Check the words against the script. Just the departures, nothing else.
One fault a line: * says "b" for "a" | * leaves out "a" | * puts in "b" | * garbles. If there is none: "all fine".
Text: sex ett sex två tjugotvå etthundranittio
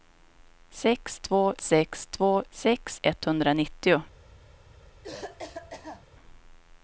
* says "två" for "ett"
* says "sex" for "tjugotvå"